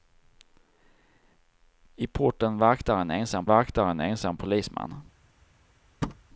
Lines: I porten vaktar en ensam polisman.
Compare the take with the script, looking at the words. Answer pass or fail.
fail